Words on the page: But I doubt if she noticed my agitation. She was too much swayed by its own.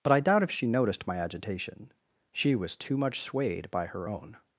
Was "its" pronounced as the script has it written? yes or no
no